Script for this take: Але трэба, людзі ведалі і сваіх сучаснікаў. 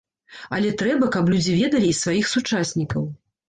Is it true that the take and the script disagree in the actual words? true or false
true